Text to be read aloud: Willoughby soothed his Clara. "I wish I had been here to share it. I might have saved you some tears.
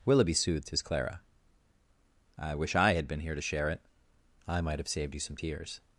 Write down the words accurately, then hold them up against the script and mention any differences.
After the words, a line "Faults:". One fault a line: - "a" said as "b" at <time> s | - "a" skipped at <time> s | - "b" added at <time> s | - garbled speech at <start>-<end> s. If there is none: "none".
Willoughby soothed his Clara. "I wish I had been here to share it. I might have saved you some tears.
Faults:
none